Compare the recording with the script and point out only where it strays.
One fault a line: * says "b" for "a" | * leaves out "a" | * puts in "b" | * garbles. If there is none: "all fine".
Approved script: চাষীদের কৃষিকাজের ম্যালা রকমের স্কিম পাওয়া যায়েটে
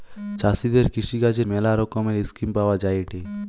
all fine